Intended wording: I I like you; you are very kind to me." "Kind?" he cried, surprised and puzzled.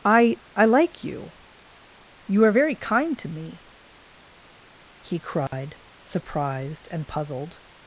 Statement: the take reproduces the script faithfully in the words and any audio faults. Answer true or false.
false